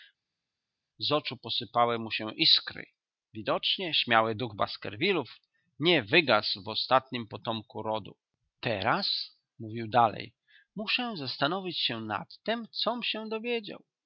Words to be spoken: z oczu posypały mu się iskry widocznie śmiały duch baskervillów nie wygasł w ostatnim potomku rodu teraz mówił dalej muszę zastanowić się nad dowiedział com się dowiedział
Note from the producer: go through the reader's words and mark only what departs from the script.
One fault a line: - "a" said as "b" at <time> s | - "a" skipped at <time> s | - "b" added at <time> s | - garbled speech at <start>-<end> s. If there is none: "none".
- "dowiedział" said as "tem" at 12.4 s